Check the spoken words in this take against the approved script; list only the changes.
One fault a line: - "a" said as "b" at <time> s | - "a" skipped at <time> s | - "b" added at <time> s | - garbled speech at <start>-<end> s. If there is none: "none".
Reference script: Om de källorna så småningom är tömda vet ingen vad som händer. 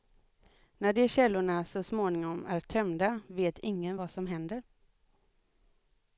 - "Om" said as "När" at 0.8 s